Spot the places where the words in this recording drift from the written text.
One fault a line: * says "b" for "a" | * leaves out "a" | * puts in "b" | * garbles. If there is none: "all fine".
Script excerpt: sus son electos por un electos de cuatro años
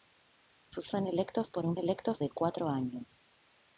all fine